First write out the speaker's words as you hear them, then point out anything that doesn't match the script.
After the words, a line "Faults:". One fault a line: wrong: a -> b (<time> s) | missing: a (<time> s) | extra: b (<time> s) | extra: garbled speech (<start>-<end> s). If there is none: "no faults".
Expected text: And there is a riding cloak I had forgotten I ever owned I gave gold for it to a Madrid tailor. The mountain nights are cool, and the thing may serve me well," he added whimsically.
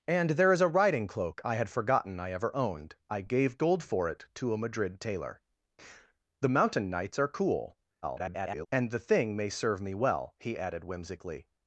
And there is a riding cloak I had forgotten I ever owned I gave gold for it to a Madrid tailor. The mountain nights are cool, [garbled] and the thing may serve me well," he added whimsically.
Faults:
extra: garbled speech (8.0-8.7 s)